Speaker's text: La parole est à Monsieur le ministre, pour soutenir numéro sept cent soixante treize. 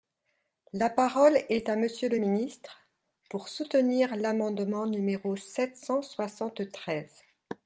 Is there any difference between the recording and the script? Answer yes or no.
yes